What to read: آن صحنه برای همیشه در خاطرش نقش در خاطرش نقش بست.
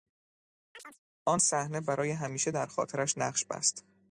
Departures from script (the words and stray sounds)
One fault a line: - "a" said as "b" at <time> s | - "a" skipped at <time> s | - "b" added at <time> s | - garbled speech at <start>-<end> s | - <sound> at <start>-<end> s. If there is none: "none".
- chirp at 0.7-1.0 s
- "در خاطرش نقش" skipped at 3.5 s